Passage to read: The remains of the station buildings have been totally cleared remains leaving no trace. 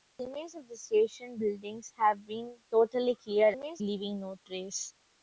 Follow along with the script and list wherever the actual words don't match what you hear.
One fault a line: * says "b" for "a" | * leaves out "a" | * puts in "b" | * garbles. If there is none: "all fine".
all fine